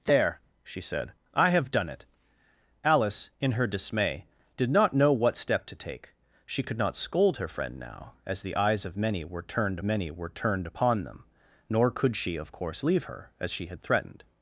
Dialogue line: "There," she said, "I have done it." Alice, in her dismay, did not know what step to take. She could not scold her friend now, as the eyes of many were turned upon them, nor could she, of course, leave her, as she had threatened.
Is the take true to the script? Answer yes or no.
no